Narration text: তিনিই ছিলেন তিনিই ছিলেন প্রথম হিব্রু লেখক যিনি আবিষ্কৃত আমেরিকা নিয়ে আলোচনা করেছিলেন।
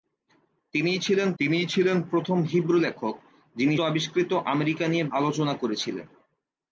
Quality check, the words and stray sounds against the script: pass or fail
pass